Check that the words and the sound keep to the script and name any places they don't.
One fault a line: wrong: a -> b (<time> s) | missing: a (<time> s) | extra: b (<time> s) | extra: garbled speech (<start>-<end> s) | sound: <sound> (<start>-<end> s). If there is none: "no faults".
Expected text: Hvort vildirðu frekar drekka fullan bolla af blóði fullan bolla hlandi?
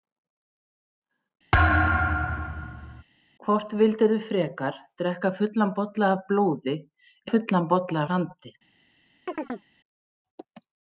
sound: thud (1.5-3.0 s)
sound: chirp (9.3-9.7 s)